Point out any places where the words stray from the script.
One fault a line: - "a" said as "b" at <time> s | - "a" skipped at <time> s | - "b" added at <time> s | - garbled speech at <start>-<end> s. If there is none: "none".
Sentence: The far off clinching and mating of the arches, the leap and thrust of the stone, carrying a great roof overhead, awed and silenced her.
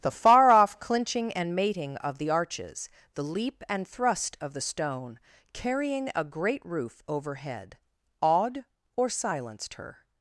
- "and" said as "or" at 8.9 s